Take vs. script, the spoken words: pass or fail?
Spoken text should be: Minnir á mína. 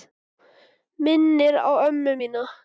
fail